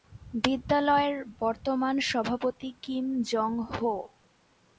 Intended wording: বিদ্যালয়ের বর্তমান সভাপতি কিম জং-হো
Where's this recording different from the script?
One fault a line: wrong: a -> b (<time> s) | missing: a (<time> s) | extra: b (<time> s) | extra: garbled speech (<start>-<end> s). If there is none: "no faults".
no faults